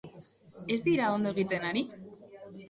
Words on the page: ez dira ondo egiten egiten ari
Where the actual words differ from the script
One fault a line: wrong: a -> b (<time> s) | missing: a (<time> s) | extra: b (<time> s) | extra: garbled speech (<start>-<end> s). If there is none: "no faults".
missing: egiten (1.7 s)